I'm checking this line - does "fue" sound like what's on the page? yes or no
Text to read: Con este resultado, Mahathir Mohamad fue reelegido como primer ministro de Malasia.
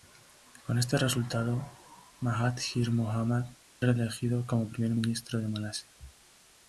no